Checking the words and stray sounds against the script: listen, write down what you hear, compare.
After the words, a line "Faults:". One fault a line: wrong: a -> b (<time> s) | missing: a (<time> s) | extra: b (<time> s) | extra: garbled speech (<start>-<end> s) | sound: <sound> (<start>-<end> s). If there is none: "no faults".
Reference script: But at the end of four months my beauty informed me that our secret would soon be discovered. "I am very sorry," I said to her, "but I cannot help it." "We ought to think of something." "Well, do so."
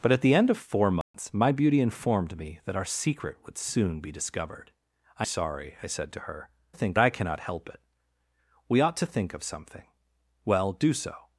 But at the end of four months my beauty informed me that our secret would soon be discovered. "I sorry," I said to her, "think I cannot help it." "We ought to think of something." "Well, do so."
Faults:
sound: dropout (1.0-1.1 s)
missing: am very (5.3 s)
wrong: but -> think (6.7 s)